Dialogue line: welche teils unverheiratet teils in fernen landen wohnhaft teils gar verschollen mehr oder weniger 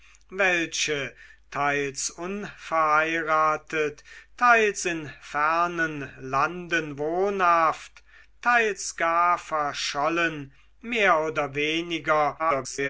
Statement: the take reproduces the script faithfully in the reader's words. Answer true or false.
false